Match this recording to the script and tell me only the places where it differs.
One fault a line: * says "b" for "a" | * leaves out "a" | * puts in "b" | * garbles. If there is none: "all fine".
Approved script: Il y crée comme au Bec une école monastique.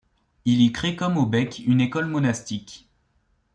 all fine